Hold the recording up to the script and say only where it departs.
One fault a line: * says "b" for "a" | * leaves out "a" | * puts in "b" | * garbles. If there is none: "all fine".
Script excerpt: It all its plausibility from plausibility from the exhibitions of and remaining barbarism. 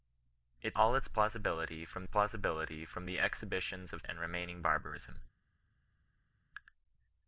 all fine